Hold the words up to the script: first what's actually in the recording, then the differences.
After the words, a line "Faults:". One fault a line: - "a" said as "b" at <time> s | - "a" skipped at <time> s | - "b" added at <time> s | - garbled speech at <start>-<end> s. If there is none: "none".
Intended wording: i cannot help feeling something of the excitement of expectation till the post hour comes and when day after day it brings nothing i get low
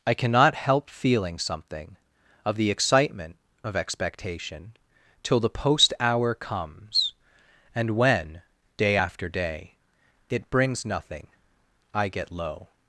i cannot help feeling something of the excitement of expectation till the post hour comes and when day after day it brings nothing i get low
Faults:
none